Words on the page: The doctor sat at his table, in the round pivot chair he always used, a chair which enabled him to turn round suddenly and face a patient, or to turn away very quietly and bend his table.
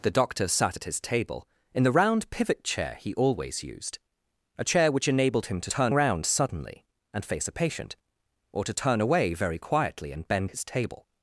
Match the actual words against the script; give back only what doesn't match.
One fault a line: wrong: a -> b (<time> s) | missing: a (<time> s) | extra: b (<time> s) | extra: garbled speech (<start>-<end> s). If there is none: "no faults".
no faults